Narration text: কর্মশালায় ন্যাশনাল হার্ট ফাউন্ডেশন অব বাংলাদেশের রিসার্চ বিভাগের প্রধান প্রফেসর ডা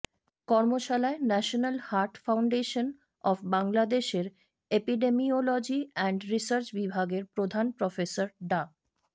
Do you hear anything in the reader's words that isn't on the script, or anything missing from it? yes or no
yes